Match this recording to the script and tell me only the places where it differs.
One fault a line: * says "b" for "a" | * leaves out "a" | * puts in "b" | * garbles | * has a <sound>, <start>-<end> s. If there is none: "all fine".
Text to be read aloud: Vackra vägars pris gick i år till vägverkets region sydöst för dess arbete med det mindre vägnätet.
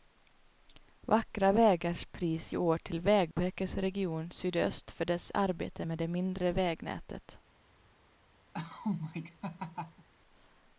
* leaves out "gick"
* has a dropout, 3.3-3.4 s
* has a laugh, 8.5-10.1 s